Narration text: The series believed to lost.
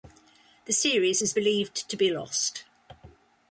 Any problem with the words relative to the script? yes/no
yes